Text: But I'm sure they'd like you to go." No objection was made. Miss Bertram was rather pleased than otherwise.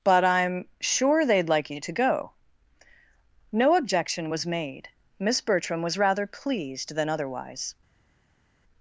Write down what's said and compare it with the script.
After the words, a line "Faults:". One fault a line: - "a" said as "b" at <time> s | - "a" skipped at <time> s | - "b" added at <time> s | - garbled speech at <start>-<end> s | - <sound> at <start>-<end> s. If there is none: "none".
But I'm sure they'd like you to go." No objection was made. Miss Bertram was rather pleased than otherwise.
Faults:
none